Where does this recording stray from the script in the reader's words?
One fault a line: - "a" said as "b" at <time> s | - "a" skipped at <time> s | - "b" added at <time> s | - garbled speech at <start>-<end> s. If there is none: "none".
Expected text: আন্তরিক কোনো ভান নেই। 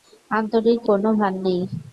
none